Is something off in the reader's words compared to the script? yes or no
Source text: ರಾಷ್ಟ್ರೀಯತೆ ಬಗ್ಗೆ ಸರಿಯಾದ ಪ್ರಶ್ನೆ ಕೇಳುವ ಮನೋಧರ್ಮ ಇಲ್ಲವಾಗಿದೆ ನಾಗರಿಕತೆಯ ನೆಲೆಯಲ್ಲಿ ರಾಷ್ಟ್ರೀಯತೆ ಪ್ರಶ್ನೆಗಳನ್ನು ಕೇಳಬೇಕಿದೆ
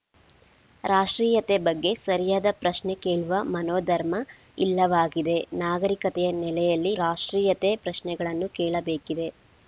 no